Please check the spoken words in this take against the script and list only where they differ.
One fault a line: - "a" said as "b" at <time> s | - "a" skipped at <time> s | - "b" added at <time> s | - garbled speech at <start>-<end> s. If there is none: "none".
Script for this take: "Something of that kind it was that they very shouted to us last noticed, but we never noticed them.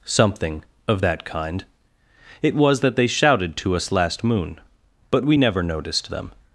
- "very" skipped at 3.1 s
- "noticed" said as "moon" at 4.2 s